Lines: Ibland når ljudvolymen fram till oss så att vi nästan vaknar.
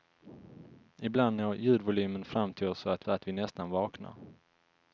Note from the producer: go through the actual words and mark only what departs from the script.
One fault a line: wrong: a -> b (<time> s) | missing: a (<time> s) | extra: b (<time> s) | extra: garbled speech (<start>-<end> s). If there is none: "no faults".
extra: så att (3.0 s)